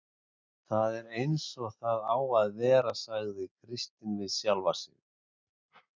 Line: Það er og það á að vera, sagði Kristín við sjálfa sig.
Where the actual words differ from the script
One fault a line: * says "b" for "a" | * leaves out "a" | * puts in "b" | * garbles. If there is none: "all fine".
* puts in "eins"